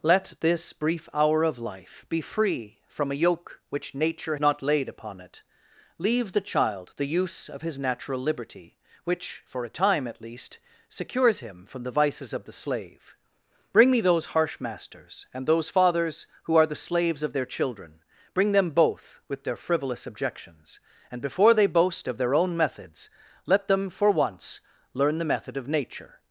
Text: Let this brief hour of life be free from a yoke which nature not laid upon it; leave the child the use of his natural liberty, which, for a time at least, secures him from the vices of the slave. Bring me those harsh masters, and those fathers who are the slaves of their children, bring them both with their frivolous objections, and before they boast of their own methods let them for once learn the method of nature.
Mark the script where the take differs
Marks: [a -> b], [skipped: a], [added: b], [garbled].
Let this brief hour of life be free from a yoke which nature not laid upon it; leave the child the use of his natural liberty, which, for a time at least, secures him from the vices of the slave. Bring me those harsh masters, and those fathers who are the slaves of their children, bring them both with their frivolous objections, and before they boast of their own methods let them for once learn the method of nature.